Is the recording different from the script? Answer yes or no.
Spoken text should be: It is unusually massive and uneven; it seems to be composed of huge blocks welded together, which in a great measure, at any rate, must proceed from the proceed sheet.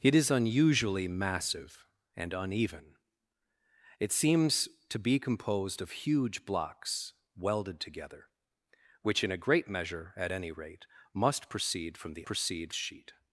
no